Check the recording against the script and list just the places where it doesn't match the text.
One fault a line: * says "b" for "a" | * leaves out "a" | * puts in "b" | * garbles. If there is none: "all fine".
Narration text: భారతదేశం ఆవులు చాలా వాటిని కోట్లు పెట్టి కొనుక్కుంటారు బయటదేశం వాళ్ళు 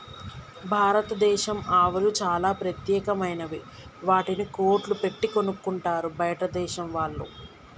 * puts in "ప్రత్యేకమైనవి"